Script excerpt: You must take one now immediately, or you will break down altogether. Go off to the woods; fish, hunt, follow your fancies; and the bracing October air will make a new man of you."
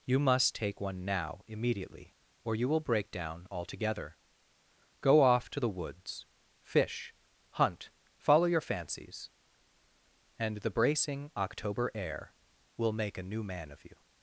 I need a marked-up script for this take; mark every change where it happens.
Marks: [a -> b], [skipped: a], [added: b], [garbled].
You must take one now immediately, or you will break down altogether. Go off to the woods; fish, hunt, follow your fancies; and the bracing October air will make a new man of you."